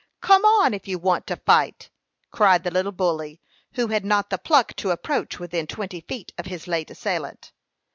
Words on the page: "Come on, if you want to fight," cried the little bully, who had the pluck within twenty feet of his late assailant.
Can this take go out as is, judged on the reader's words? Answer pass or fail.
fail